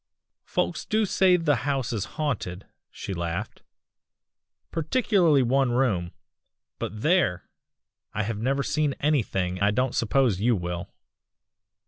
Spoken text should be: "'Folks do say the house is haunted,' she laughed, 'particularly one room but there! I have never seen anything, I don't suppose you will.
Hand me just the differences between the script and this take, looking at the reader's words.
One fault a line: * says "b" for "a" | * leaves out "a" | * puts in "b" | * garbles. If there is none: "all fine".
all fine